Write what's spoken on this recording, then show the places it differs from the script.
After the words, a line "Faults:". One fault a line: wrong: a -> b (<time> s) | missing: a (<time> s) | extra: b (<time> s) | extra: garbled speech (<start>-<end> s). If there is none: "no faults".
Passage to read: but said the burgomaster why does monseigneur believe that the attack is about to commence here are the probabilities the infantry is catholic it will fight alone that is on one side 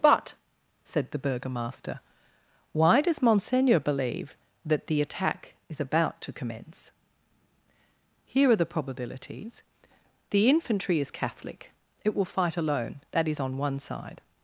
but said the burgomaster why does monseigneur believe that the attack is about to commence here are the probabilities the infantry is catholic it will fight alone that is on one side
Faults:
no faults